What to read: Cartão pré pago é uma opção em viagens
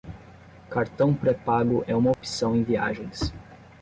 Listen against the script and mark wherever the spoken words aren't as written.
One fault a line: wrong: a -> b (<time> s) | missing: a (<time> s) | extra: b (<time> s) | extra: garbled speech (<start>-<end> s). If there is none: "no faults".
no faults